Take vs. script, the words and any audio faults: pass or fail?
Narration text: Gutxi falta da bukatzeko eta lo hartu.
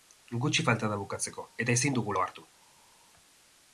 fail